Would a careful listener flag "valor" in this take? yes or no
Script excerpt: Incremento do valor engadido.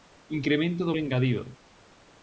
yes